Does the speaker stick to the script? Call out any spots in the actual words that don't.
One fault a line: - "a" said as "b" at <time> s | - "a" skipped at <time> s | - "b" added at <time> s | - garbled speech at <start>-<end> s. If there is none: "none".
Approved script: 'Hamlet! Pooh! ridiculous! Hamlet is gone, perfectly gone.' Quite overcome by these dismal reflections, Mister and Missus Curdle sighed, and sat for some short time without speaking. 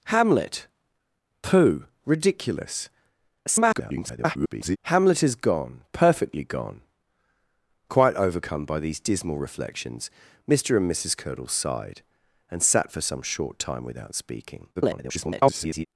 - garbled speech at 3.5-4.8 s
- garbled speech at 14.8-15.9 s